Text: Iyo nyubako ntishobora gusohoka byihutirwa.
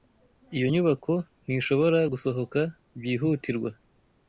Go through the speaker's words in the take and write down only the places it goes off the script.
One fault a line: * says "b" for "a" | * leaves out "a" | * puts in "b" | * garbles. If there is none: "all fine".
all fine